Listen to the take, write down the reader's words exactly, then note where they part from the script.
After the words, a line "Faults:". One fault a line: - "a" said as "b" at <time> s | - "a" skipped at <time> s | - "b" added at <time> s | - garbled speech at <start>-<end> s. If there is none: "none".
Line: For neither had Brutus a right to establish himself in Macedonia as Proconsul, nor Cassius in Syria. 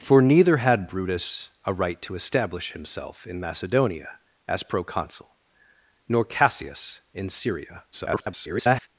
For neither had Brutus a right to establish himself in Macedonia as Proconsul, nor Cassius in Syria. [garbled]
Faults:
- garbled speech at 7.9-8.9 s